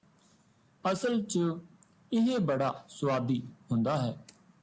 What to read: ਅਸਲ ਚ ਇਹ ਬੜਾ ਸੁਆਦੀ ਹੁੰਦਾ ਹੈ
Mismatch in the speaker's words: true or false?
false